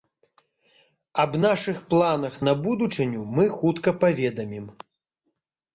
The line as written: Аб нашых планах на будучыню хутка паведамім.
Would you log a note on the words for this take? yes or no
yes